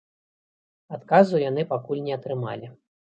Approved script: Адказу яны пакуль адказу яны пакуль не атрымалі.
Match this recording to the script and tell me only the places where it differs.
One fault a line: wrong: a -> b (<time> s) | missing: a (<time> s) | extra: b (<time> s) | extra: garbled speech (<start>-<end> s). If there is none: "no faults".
missing: адказу яны пакуль (2.0 s)